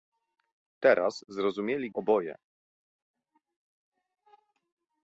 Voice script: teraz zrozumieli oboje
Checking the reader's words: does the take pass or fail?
pass